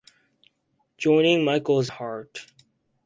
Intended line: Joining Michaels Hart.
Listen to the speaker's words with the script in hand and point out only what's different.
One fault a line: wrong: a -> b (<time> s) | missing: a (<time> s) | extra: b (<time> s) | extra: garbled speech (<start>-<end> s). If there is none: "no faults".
no faults